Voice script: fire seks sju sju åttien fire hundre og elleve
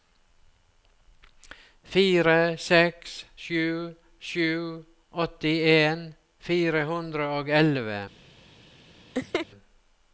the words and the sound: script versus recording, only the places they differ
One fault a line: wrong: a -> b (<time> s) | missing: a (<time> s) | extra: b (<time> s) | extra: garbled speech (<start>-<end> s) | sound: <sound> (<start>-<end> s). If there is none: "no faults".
sound: laugh (9.1-9.5 s)